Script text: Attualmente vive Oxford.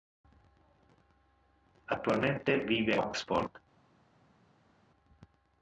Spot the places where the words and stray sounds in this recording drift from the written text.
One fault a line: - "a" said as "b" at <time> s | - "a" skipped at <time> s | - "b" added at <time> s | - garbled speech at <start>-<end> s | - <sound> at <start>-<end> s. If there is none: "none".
none